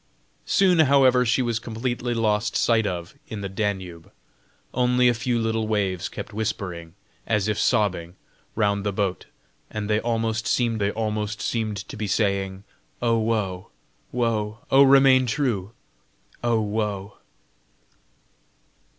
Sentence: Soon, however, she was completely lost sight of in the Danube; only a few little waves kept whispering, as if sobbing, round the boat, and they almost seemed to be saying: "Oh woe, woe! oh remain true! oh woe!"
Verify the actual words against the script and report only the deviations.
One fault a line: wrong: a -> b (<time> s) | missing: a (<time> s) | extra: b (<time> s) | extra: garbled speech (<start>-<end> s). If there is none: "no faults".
extra: they almost seemed (10.8 s)